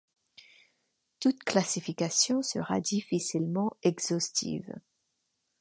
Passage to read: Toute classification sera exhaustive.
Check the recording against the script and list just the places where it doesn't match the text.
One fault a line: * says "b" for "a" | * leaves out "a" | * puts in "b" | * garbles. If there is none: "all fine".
* puts in "difficilement"